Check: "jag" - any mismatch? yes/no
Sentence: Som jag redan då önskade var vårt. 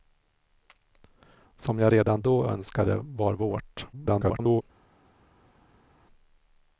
no